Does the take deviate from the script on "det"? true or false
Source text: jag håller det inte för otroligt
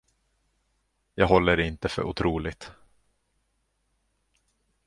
false